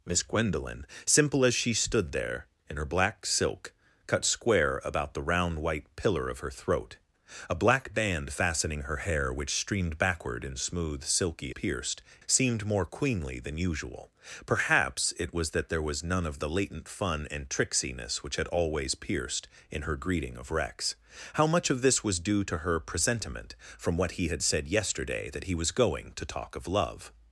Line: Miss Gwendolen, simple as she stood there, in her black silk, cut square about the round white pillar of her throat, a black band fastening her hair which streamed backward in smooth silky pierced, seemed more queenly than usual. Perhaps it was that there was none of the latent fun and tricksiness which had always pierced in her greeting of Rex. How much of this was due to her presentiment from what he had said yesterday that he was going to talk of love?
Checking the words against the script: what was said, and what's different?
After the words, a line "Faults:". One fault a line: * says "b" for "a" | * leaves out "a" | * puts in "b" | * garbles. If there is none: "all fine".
Miss Gwendolen, simple as she stood there, in her black silk, cut square about the round white pillar of her throat, a black band fastening her hair which streamed backward in smooth silky pierced, seemed more queenly than usual. Perhaps it was that there was none of the latent fun and tricksiness which had always pierced in her greeting of Rex. How much of this was due to her presentiment from what he had said yesterday that he was going to talk of love?
Faults:
all fine